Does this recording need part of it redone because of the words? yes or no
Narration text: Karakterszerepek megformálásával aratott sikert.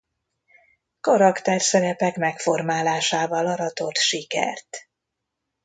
no